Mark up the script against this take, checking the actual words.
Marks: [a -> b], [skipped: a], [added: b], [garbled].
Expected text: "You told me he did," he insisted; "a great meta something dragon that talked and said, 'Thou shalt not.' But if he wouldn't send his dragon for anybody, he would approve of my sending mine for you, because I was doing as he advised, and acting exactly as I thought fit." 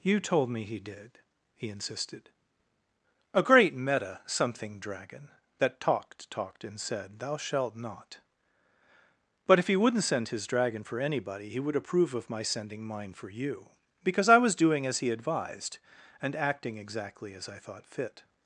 "You told me he did," he insisted; "a great meta something dragon that talked [added: talked] and said, 'Thou shalt not.' But if he wouldn't send his dragon for anybody, he would approve of my sending mine for you, because I was doing as he advised, and acting exactly as I thought fit."